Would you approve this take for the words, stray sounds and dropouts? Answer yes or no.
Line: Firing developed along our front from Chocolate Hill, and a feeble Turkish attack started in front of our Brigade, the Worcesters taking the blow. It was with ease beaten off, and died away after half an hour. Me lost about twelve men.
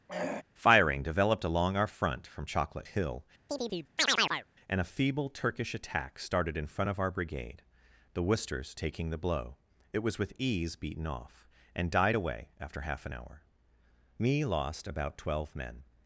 no